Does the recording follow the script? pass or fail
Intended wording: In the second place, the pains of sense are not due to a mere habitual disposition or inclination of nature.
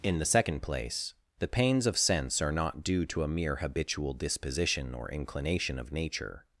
pass